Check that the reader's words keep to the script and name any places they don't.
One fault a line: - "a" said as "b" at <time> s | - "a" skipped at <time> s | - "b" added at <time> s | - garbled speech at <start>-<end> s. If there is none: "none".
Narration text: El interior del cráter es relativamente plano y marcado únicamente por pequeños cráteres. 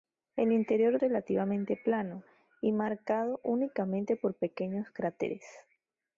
- "del cráter es" skipped at 1.0 s